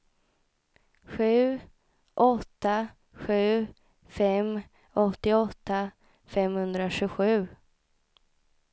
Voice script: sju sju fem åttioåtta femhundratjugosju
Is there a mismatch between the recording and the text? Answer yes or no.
yes